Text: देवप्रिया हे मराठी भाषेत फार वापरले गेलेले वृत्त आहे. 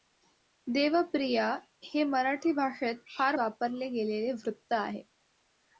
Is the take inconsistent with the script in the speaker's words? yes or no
no